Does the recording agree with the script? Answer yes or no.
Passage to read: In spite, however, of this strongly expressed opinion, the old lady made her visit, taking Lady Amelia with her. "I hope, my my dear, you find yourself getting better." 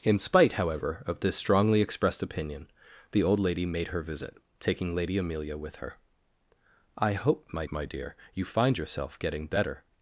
yes